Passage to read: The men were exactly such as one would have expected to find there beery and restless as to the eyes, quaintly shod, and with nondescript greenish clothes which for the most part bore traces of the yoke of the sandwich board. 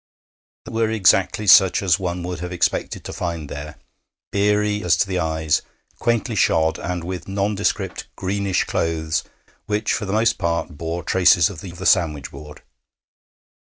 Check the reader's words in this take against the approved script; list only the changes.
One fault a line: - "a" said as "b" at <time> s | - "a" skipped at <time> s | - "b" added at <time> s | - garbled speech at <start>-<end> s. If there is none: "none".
- "men" skipped at 0.7 s
- "and restless" skipped at 4.8 s
- "yoke" skipped at 11.7 s